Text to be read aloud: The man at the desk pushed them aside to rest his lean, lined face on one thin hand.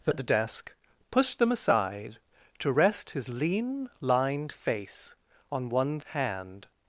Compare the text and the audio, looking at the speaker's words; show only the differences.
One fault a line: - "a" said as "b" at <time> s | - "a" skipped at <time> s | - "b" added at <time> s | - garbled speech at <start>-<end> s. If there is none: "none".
- "man" skipped at 0.1 s
- "thin" skipped at 6.0 s